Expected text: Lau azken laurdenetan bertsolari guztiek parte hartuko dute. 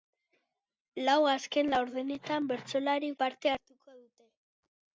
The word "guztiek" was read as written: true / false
false